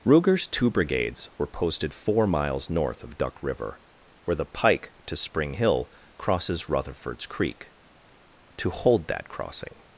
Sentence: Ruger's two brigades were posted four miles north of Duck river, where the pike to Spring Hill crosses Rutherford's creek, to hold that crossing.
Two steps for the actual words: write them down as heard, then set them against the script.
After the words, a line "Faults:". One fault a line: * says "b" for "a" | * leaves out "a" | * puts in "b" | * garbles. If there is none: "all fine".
Ruger's two brigades were posted four miles north of Duck river, where the pike to Spring Hill crosses Rutherford's creek, to hold that crossing.
Faults:
all fine